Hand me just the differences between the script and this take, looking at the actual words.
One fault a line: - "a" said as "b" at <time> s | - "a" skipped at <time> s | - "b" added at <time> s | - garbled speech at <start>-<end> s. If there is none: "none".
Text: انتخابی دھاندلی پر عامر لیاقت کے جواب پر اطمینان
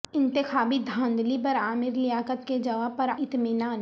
none